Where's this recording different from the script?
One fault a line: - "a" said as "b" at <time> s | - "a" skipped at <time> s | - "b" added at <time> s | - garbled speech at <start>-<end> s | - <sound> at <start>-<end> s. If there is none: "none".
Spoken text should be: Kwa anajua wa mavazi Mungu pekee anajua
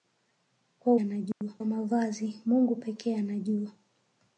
- dropout at 1.3-1.4 s